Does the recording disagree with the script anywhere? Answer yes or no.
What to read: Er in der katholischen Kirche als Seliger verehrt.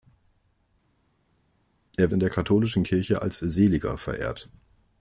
no